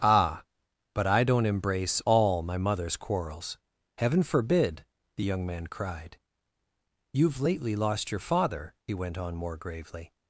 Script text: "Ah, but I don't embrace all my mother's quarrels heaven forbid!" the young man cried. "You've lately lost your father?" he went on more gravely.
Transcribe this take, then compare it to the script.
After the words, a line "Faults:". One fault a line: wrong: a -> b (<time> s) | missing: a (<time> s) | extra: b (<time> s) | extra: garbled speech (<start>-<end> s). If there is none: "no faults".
"Ah, but I don't embrace all my mother's quarrels heaven forbid!" the young man cried. "You've lately lost your father?" he went on more gravely.
Faults:
no faults